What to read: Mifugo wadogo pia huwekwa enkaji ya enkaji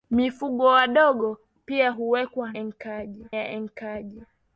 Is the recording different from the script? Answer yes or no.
no